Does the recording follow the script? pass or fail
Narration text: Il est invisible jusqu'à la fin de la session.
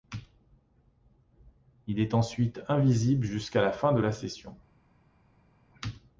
fail